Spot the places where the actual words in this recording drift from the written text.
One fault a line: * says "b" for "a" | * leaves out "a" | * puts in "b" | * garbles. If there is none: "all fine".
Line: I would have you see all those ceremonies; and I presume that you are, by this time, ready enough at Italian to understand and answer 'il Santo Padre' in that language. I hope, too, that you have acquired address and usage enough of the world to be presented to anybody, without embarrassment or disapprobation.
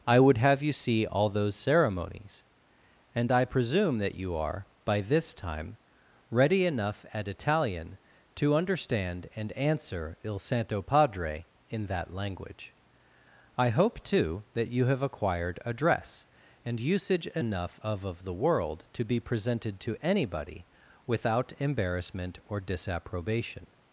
* puts in "of"